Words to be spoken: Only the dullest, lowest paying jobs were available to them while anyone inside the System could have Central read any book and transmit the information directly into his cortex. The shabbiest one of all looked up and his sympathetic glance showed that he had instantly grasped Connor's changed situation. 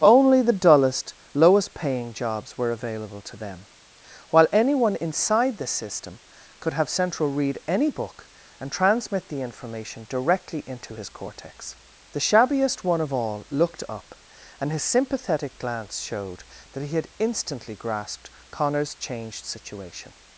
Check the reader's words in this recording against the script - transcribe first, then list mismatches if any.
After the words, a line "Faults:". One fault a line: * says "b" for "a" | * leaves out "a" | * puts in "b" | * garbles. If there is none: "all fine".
Only the dullest, lowest paying jobs were available to them while anyone inside the System could have Central read any book and transmit the information directly into his cortex. The shabbiest one of all looked up and his sympathetic glance showed that he had instantly grasped Connor's changed situation.
Faults:
all fine